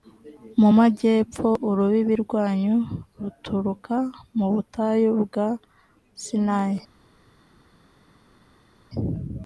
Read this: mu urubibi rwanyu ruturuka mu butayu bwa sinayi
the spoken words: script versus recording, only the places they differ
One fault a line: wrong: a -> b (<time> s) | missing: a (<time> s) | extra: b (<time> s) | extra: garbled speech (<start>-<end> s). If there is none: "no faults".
extra: majyepfo (0.8 s)